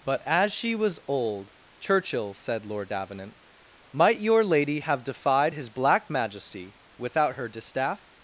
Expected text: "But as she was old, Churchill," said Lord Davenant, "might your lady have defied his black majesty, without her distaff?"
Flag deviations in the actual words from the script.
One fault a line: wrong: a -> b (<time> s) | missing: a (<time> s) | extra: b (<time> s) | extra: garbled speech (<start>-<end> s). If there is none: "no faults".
no faults